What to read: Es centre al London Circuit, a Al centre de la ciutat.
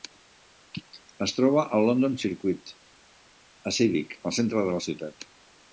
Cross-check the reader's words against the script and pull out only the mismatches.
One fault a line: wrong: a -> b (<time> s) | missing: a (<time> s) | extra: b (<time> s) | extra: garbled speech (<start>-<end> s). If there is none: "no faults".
wrong: centre -> troba (1.4 s)
extra: Civic (3.8 s)